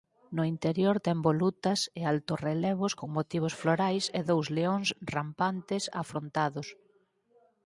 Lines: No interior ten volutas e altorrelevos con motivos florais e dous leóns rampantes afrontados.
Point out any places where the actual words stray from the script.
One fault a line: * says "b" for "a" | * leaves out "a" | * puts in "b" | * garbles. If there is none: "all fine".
all fine